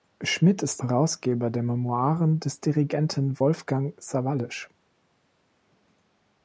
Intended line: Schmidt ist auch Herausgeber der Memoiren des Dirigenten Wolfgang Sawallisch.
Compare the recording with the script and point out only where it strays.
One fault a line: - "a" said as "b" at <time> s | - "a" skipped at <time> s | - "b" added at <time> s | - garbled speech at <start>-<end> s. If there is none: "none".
- "auch" skipped at 0.8 s